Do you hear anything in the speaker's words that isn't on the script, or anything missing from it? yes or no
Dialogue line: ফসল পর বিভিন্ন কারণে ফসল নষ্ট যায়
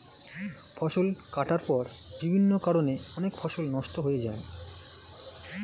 yes